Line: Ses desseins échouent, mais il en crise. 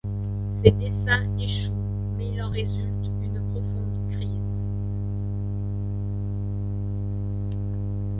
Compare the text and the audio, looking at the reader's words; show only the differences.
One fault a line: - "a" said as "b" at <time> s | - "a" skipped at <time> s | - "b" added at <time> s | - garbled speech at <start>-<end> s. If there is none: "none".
- "résulte une profonde" added at 2.5 s